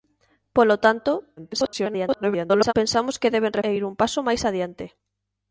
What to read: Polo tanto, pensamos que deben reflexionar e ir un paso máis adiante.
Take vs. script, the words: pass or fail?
fail